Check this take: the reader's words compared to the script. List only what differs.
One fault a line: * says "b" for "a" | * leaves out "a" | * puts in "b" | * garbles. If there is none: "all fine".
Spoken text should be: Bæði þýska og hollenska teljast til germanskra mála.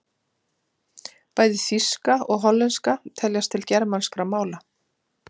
all fine